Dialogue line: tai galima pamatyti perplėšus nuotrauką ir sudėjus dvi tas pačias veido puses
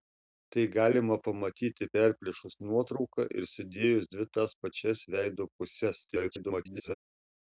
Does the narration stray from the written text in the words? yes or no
yes